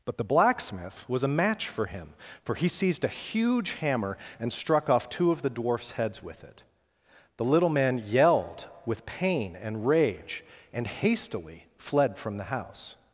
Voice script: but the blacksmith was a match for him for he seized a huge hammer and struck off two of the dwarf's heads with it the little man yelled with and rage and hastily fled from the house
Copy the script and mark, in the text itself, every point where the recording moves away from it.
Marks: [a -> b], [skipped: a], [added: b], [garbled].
but the blacksmith was a match for him for he seized a huge hammer and struck off two of the dwarf's heads with it the little man yelled with [added: pain] and rage and hastily fled from the house